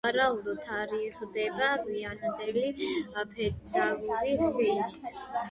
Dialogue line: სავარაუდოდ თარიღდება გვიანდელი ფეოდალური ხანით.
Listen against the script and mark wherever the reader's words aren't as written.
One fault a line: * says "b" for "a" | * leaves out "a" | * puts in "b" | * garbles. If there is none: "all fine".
all fine